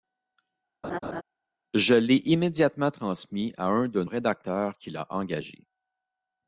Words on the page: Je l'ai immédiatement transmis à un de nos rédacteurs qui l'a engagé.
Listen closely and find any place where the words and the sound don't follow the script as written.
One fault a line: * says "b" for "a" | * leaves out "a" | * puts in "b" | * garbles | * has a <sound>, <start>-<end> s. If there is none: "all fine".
* has a laugh, 0.8-1.2 s
* leaves out "nos"